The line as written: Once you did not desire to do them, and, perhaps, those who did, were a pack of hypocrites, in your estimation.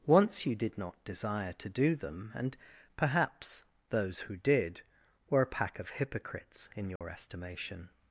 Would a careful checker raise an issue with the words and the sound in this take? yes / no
yes